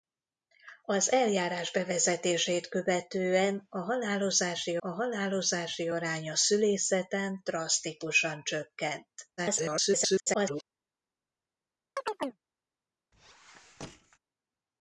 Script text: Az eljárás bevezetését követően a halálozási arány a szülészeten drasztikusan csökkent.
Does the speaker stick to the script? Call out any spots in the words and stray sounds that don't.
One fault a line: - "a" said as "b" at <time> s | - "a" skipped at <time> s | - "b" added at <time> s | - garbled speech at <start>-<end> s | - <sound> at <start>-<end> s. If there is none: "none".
- "a halálozási" added at 4.8 s
- garbled speech at 9.4-10.6 s
- chirp at 12.0-12.4 s
- squeak at 13.1-14.2 s